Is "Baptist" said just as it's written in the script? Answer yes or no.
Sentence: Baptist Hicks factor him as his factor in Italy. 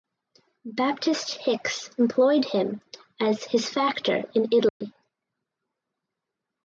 yes